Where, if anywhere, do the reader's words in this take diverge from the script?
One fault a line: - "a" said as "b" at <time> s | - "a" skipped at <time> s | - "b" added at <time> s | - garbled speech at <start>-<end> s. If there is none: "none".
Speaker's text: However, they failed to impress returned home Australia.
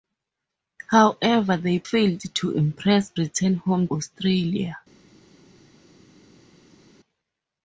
none